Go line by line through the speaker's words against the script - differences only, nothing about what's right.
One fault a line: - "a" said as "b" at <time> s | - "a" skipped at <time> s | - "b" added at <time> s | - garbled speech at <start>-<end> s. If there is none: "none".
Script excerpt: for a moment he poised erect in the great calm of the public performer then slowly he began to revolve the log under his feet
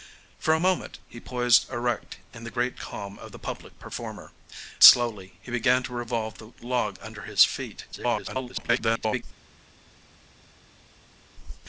- "then" skipped at 4.3 s
- garbled speech at 7.9-9.2 s